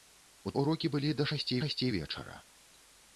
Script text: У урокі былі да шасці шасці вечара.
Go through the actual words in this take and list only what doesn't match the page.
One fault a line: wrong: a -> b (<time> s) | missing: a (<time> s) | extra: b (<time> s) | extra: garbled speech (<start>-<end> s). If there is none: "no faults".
no faults